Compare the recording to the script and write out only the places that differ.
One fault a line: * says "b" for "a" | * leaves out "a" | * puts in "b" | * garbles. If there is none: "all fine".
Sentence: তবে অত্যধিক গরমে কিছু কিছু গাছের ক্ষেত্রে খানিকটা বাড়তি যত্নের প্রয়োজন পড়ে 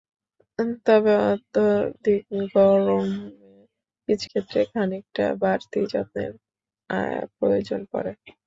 * leaves out "কিছু গাছের"